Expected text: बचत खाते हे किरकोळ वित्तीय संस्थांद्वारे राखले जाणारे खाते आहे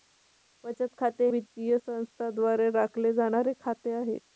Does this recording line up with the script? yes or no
no